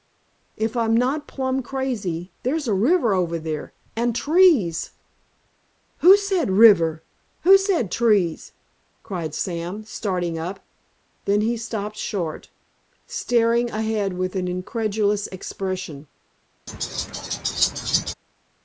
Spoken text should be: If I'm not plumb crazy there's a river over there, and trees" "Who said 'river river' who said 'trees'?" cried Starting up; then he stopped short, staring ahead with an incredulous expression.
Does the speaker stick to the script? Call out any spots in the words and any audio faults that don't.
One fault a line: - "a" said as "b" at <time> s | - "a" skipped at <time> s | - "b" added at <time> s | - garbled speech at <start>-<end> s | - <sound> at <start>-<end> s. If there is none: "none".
- "river" skipped at 7.0 s
- "Sam" added at 9.3 s
- laugh at 16.7-18.1 s